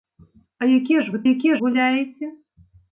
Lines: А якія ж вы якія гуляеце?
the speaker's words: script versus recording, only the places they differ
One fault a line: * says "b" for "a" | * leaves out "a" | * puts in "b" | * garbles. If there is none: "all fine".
all fine